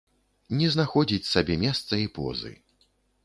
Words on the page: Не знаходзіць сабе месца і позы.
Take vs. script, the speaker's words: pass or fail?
pass